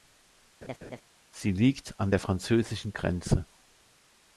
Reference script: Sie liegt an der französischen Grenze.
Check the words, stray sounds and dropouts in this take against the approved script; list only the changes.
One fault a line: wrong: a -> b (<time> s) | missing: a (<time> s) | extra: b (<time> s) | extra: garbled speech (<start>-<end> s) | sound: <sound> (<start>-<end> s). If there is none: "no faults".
sound: laugh (0.6-1.0 s)